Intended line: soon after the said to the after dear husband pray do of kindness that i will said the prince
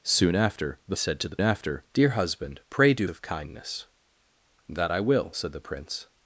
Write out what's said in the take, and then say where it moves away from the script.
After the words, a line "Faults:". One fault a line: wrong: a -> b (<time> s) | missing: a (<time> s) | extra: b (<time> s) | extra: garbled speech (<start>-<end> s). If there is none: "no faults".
soon after the said to the after dear husband pray do of kindness that i will said the prince
Faults:
no faults